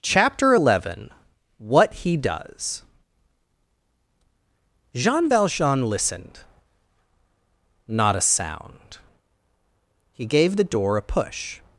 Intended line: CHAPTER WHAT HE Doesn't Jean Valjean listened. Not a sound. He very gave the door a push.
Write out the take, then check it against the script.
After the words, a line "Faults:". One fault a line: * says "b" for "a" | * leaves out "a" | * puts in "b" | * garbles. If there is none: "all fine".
CHAPTER eleven, WHAT HE DOES Jean Valjean listened. Not a sound. He gave the door a push.
Faults:
* puts in "eleven"
* says "DOES" for "Doesn't"
* leaves out "very"